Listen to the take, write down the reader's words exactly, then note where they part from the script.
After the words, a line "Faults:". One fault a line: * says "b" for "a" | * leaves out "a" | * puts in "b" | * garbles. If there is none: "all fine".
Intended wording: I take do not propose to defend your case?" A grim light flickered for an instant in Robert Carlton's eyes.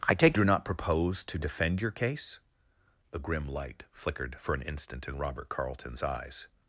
I take do not propose to defend your case?" A grim light flickered for an instant in Robert Carlton's eyes.
Faults:
all fine